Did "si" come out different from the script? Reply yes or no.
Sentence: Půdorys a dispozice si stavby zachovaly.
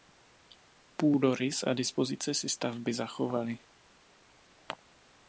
no